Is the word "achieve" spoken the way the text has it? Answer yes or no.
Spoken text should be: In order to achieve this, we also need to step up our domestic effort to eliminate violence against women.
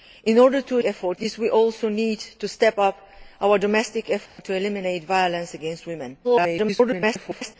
no